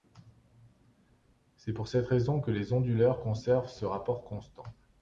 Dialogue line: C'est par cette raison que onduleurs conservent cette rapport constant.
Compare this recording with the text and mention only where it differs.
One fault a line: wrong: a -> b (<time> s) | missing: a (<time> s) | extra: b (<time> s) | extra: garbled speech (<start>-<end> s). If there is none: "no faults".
wrong: par -> pour (1.7 s)
extra: les (2.5 s)
wrong: cette -> ce (3.7 s)